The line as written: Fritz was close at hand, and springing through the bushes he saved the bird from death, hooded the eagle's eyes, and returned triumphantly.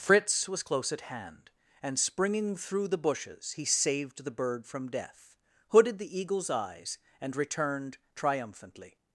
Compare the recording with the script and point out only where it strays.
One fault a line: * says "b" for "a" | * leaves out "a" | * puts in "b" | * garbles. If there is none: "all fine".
all fine